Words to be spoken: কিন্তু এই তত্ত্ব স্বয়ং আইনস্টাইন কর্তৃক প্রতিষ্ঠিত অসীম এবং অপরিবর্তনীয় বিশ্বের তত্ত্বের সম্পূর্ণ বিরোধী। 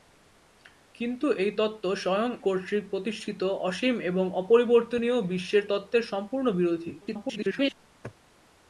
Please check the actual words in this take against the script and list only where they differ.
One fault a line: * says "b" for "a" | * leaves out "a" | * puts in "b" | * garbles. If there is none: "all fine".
* leaves out "আইনস্টাইন"
* garbles